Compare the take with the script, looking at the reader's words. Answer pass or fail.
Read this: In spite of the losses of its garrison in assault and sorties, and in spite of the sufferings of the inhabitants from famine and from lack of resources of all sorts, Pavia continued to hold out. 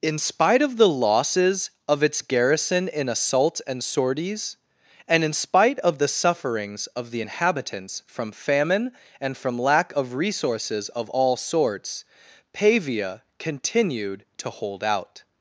pass